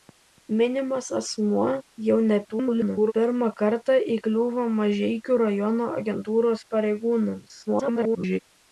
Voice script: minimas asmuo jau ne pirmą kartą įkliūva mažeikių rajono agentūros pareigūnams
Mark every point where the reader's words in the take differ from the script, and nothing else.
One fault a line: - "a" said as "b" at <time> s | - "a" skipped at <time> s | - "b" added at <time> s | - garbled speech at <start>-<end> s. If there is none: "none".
- garbled speech at 2.5-3.1 s
- garbled speech at 7.7-8.4 s